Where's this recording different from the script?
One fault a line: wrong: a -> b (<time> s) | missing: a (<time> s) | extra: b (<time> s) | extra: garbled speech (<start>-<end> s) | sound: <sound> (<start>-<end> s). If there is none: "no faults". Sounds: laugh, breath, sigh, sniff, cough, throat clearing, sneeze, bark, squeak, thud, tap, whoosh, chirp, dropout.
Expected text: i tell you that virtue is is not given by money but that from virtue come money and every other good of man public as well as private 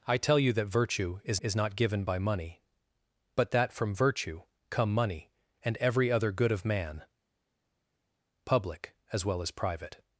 no faults